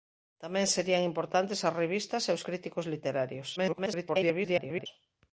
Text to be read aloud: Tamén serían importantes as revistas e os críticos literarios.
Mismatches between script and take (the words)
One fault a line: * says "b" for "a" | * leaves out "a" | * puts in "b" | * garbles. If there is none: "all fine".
* garbles